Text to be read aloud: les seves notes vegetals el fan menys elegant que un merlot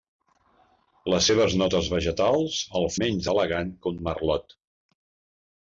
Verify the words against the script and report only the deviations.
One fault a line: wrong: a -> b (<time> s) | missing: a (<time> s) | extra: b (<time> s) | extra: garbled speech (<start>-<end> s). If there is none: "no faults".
missing: fan (2.9 s)